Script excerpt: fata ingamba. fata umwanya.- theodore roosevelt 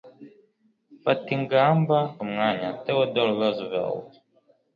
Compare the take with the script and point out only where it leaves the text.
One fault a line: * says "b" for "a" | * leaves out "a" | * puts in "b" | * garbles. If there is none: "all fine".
* leaves out "fata"